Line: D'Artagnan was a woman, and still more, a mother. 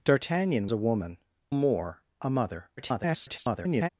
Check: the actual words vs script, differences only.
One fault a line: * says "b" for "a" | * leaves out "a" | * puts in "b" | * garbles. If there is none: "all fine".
* leaves out "was"
* leaves out "and still"
* garbles